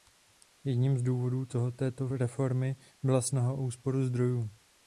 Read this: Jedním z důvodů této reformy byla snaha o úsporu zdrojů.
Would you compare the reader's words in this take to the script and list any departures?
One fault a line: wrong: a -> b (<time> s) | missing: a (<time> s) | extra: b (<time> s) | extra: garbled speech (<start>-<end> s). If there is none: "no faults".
no faults